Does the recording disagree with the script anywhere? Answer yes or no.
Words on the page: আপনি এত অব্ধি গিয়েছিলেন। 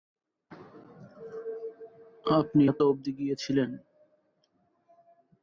no